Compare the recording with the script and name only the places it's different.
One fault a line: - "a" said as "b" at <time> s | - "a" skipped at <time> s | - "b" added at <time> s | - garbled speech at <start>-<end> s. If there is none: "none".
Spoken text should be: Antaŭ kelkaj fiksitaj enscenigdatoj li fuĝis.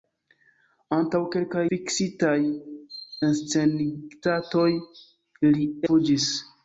none